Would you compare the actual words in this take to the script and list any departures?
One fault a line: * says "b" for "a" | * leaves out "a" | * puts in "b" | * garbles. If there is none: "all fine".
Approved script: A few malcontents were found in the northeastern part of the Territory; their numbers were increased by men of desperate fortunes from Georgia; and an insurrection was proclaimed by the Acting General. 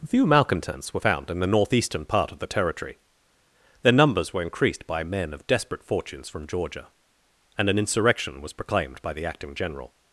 * leaves out "A"